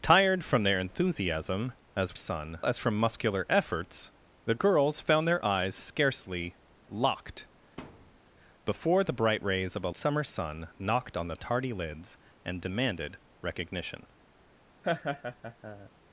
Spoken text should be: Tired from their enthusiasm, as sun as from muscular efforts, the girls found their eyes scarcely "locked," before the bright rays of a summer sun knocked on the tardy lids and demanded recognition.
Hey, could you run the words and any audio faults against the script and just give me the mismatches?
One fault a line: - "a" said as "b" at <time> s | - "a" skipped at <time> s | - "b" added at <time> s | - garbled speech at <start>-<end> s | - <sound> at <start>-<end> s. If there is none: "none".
- thud at 7.8-8.2 s
- laugh at 14.8-15.9 s